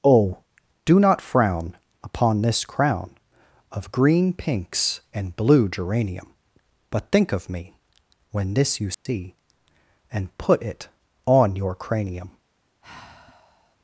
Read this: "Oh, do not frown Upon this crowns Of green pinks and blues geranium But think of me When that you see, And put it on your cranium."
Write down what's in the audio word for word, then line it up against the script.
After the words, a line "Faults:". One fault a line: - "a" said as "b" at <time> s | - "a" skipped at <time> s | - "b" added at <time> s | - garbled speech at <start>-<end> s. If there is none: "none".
"Oh, do not frown Upon this crown Of green pinks and blue geranium But think of me When this you see, And put it on your cranium."
Faults:
- "crowns" said as "crown" at 2.6 s
- "blues" said as "blue" at 5.3 s
- "that" said as "this" at 8.5 s